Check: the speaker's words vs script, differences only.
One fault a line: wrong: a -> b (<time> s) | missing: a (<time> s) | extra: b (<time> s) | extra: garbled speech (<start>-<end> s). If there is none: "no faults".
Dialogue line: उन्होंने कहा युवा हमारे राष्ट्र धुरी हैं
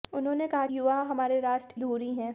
no faults